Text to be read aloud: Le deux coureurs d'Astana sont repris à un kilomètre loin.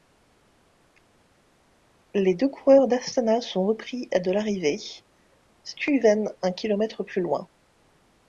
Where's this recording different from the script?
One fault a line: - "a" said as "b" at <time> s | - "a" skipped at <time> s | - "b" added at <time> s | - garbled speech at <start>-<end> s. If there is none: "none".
- "Le" said as "Les" at 2.1 s
- "de l'arrivée Stuyven" added at 4.2 s
- "plus" added at 7.0 s